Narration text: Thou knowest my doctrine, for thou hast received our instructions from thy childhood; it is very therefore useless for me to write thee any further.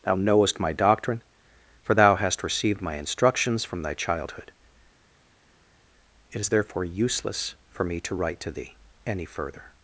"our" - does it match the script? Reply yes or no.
no